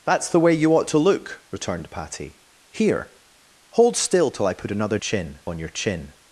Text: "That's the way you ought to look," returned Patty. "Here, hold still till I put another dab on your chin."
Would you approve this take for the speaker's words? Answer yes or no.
no